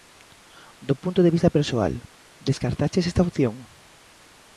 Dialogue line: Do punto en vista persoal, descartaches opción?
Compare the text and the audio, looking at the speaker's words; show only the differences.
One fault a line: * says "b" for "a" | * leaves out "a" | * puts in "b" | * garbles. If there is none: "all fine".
* says "de" for "en"
* puts in "esta"